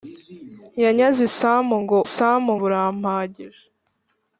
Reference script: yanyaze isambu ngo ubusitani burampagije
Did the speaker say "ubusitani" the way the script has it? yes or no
no